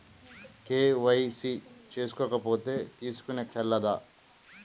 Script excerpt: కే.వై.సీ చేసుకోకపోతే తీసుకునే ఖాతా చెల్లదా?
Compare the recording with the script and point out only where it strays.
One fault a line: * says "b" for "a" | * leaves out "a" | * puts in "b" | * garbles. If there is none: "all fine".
* leaves out "ఖాతా"